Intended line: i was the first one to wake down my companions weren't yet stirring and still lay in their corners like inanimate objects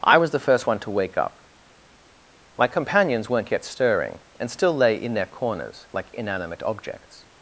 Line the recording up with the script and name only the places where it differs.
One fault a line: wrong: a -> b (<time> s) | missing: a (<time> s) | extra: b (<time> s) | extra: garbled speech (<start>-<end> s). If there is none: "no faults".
wrong: down -> up (1.2 s)